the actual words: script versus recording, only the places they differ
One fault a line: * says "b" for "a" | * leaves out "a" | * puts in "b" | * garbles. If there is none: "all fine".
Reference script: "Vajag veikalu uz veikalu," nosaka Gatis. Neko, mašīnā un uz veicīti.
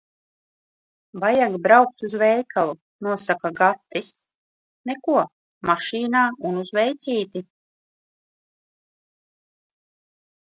* says "braukt" for "veikalu"